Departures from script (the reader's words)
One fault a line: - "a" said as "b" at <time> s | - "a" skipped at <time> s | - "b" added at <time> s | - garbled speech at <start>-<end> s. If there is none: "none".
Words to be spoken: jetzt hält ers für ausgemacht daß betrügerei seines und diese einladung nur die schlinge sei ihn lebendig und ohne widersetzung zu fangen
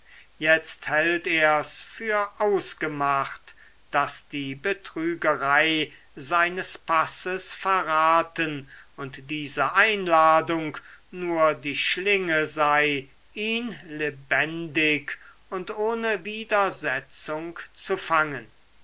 - "die" added at 4.3 s
- "passes verraten" added at 6.8 s